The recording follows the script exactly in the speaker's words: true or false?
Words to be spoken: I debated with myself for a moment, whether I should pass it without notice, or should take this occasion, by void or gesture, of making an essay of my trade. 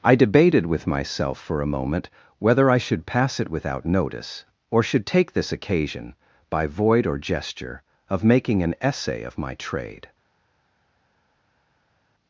true